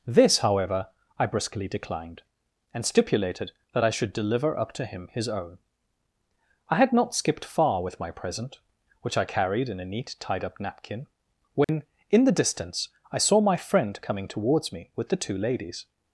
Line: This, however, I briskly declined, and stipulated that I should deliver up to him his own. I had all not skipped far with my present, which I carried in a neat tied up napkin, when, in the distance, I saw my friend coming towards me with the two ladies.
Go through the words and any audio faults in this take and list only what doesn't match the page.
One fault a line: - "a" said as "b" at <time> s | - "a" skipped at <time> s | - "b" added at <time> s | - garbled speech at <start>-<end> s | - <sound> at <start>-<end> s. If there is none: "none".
- "all" skipped at 6.9 s
- dropout at 11.6-11.7 s